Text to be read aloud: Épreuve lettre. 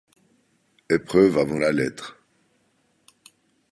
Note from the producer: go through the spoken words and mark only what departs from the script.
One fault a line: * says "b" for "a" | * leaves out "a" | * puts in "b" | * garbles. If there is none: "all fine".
* puts in "avant la"